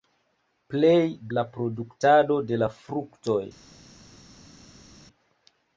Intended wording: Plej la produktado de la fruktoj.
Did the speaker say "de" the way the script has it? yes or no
yes